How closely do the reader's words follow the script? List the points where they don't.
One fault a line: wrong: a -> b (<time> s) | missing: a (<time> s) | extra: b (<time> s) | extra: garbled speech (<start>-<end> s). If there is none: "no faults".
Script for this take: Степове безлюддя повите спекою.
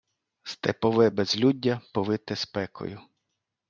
no faults